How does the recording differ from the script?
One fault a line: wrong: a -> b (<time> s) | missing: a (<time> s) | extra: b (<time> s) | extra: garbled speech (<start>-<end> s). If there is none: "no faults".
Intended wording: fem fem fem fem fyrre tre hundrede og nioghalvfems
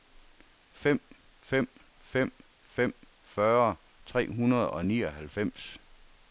no faults